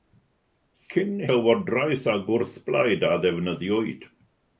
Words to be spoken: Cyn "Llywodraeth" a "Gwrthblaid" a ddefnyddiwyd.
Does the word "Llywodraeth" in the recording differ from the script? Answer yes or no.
no